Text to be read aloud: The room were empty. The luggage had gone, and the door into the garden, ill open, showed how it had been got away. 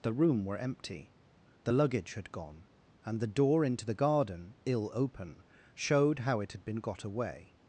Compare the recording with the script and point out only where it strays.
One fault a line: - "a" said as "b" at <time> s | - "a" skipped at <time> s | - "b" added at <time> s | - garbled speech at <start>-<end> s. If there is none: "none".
none